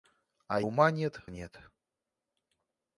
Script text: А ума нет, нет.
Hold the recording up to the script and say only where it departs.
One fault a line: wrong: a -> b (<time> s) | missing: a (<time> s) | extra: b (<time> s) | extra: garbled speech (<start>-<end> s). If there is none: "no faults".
no faults